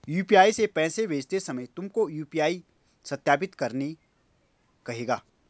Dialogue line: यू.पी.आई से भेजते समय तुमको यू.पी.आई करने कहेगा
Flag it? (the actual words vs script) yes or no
yes